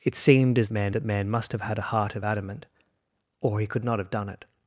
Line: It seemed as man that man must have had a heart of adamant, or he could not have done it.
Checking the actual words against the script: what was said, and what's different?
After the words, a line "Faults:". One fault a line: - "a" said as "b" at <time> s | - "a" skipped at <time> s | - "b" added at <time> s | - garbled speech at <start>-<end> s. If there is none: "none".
It seemed as man that man must have had a heart of adamant, or he could not have done it.
Faults:
none